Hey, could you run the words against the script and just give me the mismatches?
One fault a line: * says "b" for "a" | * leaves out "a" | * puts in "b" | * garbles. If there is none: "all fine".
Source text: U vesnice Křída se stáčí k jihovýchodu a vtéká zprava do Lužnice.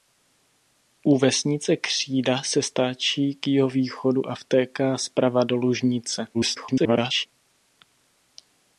* garbles